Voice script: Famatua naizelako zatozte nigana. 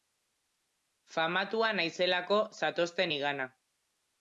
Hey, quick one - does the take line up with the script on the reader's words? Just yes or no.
yes